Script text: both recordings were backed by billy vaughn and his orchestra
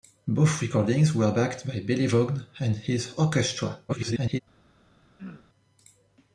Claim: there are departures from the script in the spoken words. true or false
true